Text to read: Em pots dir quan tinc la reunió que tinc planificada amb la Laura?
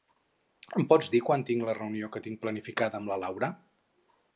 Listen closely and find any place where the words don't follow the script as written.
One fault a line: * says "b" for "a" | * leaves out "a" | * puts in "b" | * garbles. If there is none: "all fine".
all fine